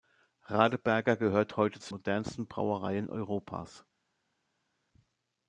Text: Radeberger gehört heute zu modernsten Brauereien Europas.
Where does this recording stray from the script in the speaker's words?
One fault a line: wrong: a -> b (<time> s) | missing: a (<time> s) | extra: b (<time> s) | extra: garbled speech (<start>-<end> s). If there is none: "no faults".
no faults